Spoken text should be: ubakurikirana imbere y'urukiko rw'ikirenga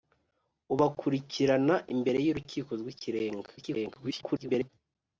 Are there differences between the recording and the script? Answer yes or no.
yes